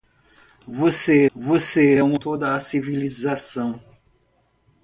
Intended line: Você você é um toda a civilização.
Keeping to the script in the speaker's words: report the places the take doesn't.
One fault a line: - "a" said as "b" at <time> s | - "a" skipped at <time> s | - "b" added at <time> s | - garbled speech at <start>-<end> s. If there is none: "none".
none